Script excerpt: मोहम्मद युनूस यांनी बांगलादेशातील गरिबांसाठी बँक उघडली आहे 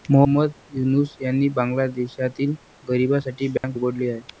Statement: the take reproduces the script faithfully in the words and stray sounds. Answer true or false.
false